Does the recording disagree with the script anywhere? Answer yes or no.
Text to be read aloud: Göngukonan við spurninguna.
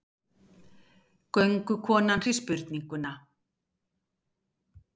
no